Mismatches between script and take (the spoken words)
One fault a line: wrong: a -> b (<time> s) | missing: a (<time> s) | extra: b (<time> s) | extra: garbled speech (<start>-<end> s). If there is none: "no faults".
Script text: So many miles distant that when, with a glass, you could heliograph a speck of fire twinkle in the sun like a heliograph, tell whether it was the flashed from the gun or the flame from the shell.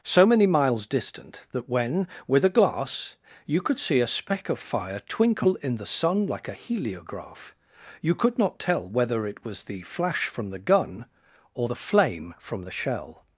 wrong: heliograph -> see (3.8 s)
extra: you could not (8.0 s)
wrong: flashed -> flash (9.8 s)